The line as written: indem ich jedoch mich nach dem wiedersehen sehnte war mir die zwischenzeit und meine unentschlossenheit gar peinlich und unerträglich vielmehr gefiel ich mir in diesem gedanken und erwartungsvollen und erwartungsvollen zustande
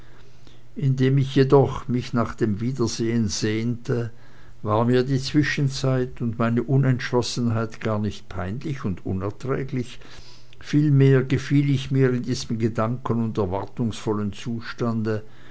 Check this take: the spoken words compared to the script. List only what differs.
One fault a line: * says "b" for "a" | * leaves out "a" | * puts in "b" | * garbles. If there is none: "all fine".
* puts in "nicht"
* leaves out "und erwartungsvollen"